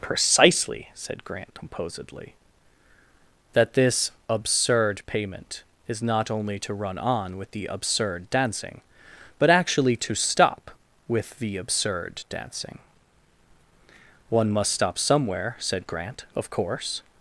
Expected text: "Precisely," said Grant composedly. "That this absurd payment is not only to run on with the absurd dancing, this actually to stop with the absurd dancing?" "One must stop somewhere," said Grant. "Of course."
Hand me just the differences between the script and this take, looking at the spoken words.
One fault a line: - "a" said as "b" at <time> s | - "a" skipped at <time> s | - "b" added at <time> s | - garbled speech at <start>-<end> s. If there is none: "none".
- "this" said as "but" at 9.4 s